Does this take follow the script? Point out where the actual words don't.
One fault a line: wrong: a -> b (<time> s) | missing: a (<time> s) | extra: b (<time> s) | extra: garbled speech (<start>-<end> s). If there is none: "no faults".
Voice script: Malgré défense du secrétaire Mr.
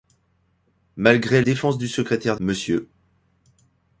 no faults